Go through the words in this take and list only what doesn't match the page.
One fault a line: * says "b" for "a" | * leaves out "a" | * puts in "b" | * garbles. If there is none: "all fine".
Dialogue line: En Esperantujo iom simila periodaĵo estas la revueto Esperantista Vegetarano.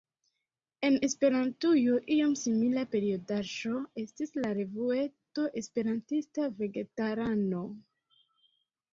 * says "estis" for "estas"